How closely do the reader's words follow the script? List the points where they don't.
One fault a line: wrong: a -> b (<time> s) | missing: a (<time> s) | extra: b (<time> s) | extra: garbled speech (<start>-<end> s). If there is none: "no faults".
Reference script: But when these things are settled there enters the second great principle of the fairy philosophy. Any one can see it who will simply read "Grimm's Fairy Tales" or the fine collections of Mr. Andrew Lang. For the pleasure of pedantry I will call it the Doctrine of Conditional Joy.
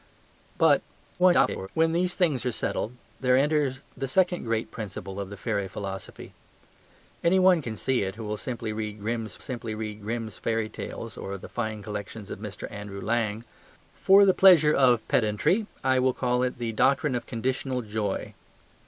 extra: garbled speech (1.2-1.7 s)
extra: simply read Grimm's (9.4 s)